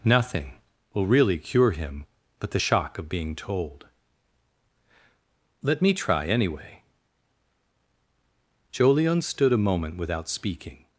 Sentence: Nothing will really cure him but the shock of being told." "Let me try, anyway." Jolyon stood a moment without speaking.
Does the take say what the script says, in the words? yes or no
yes